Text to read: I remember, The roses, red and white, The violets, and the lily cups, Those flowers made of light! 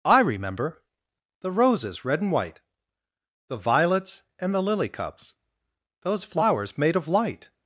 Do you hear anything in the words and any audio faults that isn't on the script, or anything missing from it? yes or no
no